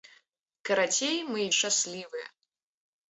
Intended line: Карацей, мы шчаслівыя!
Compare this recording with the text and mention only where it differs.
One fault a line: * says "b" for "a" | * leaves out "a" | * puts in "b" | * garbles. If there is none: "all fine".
all fine